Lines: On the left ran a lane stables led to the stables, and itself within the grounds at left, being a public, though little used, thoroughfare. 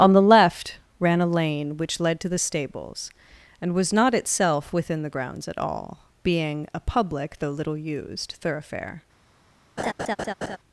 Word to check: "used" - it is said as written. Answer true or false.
true